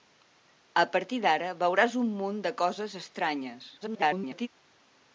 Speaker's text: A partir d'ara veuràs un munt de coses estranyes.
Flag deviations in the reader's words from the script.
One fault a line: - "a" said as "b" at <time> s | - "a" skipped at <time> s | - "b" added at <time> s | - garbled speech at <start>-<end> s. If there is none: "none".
- garbled speech at 3.8-4.5 s